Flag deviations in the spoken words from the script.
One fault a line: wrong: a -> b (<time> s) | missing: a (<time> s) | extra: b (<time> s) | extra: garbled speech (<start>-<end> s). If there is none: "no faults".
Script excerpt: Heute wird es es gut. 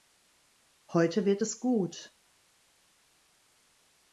missing: es (1.6 s)